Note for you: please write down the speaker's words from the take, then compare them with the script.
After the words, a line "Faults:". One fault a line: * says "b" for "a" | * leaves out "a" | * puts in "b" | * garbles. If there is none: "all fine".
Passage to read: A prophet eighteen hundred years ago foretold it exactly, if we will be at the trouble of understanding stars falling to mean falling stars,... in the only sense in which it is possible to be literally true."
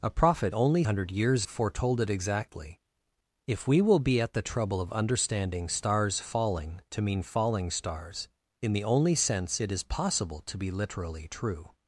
A prophet only hundred years foretold it exactly, if we will be at the trouble of understanding stars falling to mean falling stars,... in the only sense it is possible to be literally true."
Faults:
* says "only" for "eighteen"
* leaves out "ago"
* leaves out "in which"